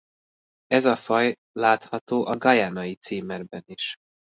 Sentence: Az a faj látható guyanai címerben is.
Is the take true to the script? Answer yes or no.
no